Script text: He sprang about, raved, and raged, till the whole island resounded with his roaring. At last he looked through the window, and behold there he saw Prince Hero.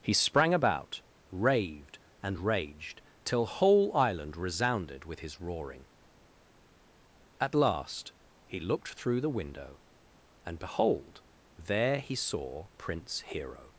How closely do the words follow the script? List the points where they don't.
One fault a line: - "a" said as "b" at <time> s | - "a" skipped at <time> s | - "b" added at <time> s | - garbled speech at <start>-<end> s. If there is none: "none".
- "the" skipped at 3.5 s